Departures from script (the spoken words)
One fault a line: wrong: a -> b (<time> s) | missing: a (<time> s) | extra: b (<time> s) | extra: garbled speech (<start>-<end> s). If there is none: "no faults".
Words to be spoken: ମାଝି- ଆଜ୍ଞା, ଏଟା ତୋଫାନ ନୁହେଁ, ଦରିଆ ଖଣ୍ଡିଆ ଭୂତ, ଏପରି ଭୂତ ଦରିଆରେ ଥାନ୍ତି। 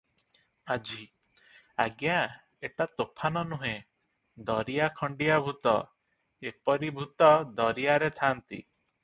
no faults